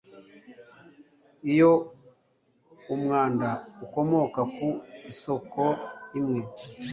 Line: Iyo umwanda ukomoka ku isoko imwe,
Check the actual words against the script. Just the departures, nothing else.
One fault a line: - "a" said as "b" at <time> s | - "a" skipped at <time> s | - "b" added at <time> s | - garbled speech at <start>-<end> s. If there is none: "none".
none